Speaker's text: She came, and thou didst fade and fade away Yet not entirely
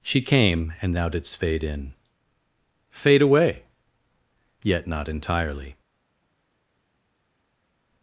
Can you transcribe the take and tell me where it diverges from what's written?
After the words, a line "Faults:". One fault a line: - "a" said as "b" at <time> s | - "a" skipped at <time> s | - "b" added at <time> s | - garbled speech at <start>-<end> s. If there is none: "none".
She came, and thou didst fade in fade away Yet not entirely
Faults:
- "and" said as "in" at 1.6 s